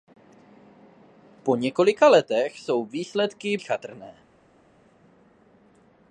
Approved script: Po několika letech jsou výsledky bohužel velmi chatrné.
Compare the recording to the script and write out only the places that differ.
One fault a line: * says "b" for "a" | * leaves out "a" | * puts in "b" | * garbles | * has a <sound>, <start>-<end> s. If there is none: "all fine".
* leaves out "bohužel velmi"